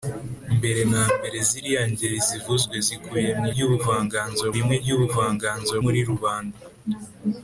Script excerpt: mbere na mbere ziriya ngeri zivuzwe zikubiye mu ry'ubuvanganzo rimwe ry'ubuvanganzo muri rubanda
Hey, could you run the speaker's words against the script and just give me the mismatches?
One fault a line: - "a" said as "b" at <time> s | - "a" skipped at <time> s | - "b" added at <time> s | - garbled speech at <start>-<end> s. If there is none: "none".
none